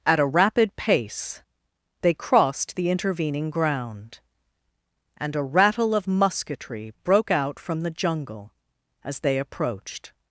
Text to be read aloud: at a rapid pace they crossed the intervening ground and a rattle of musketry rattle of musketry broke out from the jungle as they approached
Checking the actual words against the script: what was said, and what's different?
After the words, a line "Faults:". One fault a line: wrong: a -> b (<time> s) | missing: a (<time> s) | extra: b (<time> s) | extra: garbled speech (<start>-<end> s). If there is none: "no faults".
at a rapid pace they crossed the intervening ground and a rattle of musketry broke out from the jungle as they approached
Faults:
missing: rattle of musketry (6.9 s)